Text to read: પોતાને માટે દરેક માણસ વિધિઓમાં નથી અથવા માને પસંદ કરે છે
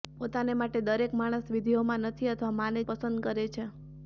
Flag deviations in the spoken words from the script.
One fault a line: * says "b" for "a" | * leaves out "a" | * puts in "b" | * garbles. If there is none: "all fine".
all fine